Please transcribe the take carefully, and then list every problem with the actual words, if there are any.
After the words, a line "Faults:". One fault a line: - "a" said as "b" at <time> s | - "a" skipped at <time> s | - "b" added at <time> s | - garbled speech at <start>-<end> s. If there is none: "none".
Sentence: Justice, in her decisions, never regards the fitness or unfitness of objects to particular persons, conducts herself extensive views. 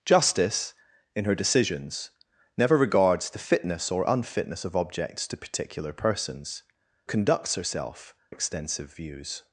Justice, in her decisions, never regards the fitness or unfitness of objects to particular persons, conducts herself extensive views.
Faults:
none